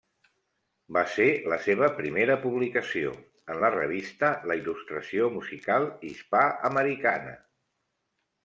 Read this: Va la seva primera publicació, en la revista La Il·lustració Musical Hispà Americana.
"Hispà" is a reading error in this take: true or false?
false